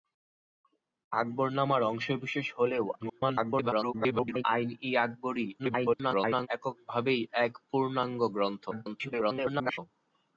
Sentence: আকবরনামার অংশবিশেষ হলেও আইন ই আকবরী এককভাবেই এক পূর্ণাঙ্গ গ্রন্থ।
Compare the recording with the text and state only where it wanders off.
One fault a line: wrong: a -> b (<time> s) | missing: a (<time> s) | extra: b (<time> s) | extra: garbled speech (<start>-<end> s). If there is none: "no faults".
extra: garbled speech (3.0-4.4 s)
extra: garbled speech (5.6-6.5 s)
extra: garbled speech (8.7-9.8 s)